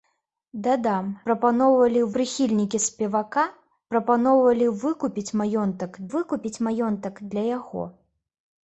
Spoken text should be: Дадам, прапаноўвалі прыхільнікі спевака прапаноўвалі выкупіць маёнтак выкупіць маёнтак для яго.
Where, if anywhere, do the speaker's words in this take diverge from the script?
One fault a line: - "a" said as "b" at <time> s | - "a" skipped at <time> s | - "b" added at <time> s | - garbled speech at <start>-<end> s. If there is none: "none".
none